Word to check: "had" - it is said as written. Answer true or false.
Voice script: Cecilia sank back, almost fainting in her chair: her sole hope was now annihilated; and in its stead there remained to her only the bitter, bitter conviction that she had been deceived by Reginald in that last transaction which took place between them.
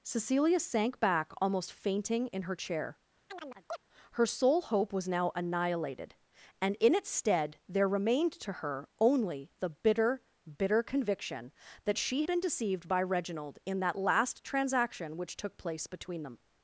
false